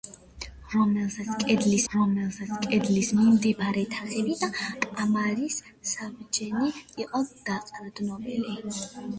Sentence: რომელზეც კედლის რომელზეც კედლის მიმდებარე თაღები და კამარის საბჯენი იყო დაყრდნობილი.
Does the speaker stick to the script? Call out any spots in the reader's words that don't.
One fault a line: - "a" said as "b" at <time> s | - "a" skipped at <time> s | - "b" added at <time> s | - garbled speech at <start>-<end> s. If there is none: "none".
none